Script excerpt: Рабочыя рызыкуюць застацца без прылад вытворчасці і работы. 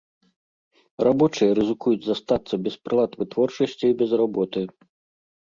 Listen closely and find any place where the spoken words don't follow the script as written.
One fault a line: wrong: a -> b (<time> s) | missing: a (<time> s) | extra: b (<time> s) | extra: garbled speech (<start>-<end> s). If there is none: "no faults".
extra: без (4.0 s)